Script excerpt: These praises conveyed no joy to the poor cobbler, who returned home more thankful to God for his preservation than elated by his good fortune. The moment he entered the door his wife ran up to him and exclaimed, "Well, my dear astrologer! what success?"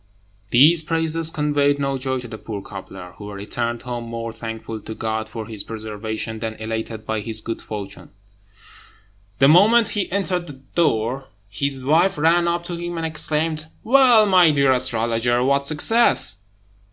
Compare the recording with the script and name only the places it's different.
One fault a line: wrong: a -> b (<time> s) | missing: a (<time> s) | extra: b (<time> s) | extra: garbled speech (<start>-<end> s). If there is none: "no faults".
no faults